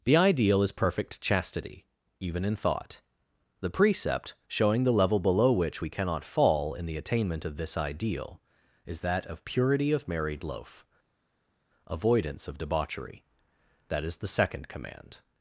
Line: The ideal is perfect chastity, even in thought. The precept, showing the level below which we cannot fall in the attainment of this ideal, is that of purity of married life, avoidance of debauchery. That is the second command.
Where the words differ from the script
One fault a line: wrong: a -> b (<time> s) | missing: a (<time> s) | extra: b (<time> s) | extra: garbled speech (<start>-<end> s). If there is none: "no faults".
wrong: life -> loaf (10.4 s)